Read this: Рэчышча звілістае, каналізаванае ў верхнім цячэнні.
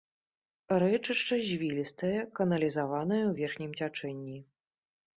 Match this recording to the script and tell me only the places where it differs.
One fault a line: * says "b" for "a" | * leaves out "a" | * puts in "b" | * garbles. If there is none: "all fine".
all fine